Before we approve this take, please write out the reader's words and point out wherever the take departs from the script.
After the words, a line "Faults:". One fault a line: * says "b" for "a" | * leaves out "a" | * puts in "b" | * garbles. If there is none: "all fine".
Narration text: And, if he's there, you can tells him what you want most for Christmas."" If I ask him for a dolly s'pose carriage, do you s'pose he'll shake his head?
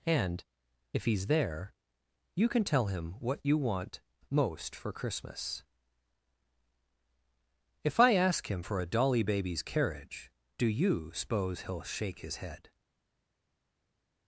And, if he's there, you can tell him what you want most for Christmas."" If I ask him for a dolly baby's carriage, do you s'pose he'll shake his head?
Faults:
* says "tell" for "tells"
* says "baby's" for "s'pose"